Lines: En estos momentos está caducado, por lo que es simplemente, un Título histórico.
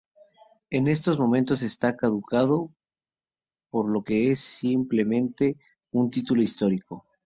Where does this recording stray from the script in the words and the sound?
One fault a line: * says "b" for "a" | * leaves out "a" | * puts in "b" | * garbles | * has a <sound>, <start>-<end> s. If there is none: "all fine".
all fine